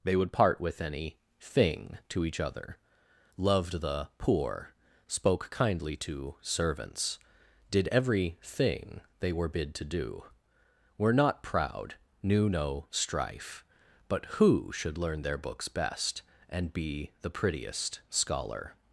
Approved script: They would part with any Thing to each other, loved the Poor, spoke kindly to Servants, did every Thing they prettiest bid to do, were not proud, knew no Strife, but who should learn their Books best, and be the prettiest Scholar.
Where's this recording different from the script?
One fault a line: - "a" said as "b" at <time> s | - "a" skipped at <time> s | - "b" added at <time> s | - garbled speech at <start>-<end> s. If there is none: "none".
- "prettiest" said as "were" at 9.3 s